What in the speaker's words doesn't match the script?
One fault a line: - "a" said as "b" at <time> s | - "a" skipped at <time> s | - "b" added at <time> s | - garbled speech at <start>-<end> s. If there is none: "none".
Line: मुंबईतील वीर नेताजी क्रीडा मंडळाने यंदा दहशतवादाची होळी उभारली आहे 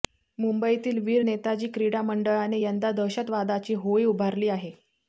none